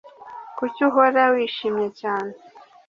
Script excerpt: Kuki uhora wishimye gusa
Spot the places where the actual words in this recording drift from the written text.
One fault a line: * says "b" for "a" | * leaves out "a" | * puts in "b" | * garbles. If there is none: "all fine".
* says "cyane" for "gusa"